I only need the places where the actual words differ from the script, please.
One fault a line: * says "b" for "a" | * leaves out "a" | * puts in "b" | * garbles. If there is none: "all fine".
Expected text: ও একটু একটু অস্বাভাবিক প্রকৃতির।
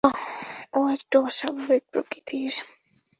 * leaves out "একটু"